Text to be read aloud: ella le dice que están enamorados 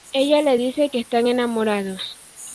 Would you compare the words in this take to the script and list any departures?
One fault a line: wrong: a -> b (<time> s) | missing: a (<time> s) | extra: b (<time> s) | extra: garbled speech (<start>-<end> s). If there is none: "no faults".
no faults